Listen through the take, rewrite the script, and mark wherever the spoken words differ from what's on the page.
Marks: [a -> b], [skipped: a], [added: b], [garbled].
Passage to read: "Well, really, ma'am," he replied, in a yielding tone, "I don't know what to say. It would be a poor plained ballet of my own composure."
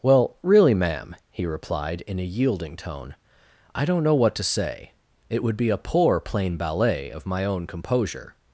"Well, really, ma'am," he replied, in a yielding tone, "I don't know what to say. It would be a poor [plained -> plain] ballet of my own composure."